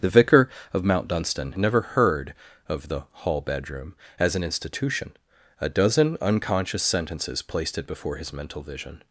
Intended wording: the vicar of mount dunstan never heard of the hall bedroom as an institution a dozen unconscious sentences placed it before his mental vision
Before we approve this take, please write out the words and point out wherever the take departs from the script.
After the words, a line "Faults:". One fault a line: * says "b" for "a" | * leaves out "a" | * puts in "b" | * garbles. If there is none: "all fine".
the vicar of mount dunstan never heard of the hall bedroom as an institution a dozen unconscious sentences placed it before his mental vision
Faults:
all fine